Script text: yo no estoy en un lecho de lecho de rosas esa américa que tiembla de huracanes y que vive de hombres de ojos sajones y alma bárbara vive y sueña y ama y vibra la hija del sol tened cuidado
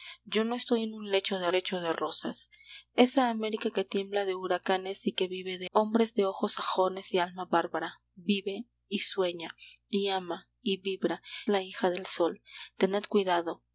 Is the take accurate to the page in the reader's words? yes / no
yes